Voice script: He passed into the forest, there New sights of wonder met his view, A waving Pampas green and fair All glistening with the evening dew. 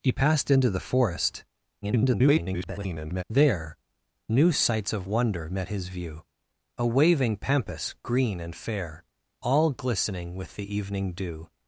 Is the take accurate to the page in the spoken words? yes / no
no